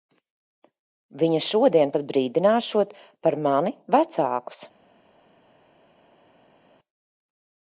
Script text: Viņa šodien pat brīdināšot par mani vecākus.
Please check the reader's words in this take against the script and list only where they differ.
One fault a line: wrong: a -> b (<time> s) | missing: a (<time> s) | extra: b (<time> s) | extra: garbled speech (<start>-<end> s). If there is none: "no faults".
no faults